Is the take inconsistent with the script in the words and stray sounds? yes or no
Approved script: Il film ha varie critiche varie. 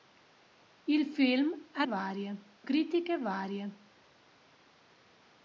no